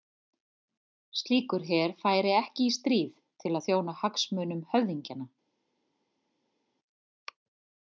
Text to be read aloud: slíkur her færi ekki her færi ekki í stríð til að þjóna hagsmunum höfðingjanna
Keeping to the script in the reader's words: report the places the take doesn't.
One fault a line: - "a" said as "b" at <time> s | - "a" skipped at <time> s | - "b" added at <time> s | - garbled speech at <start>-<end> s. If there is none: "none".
- "her færi ekki" skipped at 2.7 s